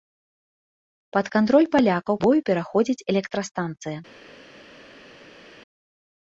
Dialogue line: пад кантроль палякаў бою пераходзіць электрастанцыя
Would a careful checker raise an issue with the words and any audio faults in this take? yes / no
no